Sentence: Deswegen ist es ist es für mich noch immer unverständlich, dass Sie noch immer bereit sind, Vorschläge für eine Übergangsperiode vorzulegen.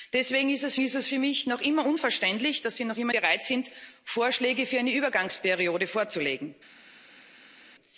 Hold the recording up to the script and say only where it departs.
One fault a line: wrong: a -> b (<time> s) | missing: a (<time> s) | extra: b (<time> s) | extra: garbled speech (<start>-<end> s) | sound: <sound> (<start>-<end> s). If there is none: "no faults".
no faults